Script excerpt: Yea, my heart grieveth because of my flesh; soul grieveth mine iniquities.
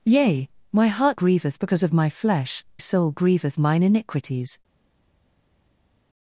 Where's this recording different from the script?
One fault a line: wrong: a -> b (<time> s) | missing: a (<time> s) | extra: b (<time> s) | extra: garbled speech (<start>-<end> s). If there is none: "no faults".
no faults